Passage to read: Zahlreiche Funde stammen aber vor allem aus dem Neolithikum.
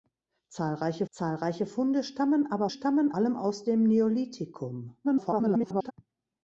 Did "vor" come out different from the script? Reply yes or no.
yes